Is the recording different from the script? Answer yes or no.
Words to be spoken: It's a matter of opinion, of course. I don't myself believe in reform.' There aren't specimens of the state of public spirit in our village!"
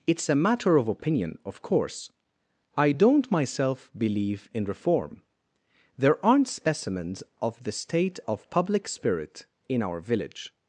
no